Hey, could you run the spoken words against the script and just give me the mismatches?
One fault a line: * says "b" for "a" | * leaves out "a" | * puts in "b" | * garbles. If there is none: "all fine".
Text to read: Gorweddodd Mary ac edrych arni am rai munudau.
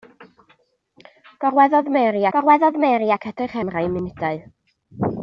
* puts in "gorweddodd Mary"
* leaves out "arni"